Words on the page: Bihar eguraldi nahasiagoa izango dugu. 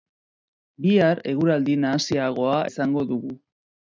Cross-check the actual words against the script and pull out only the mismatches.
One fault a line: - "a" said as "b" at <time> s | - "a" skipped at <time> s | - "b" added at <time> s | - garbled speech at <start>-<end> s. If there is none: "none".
none